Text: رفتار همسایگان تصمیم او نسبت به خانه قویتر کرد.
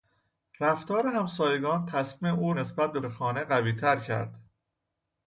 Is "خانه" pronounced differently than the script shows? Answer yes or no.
no